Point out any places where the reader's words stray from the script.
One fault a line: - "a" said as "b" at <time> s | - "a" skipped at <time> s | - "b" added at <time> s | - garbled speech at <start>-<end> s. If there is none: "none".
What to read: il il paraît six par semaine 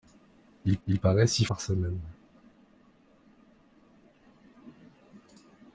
none